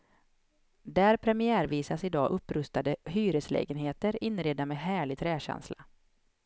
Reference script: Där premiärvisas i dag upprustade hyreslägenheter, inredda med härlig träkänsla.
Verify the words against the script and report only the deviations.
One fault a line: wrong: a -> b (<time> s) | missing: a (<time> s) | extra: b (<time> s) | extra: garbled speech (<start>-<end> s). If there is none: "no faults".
no faults